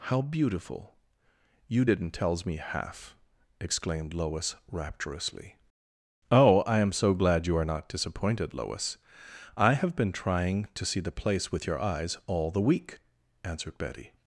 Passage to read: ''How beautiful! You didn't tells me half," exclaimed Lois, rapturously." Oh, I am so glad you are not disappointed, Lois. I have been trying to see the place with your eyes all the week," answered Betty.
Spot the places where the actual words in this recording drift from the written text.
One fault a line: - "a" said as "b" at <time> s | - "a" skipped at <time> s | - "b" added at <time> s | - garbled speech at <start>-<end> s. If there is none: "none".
none